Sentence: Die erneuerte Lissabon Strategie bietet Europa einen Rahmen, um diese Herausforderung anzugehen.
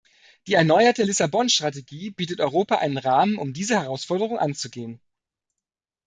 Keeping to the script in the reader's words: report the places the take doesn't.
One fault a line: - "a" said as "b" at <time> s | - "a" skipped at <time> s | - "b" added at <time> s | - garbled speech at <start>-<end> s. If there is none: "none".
none